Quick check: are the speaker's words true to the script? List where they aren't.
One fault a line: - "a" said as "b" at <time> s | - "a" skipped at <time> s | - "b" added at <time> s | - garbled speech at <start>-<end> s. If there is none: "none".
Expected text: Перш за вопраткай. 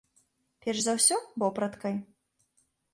- "ўсё" added at 1.0 s